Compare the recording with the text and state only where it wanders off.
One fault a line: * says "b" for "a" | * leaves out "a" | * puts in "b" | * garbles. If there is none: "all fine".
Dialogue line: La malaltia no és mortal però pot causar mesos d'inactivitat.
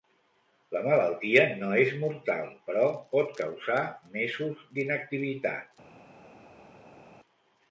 all fine